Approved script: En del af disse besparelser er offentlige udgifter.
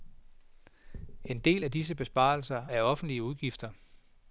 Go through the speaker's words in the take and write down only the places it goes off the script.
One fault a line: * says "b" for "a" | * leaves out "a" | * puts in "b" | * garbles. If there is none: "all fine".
all fine